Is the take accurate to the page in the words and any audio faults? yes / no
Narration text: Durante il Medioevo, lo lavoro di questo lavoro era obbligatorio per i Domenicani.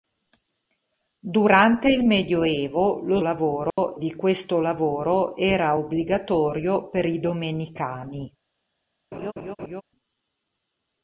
no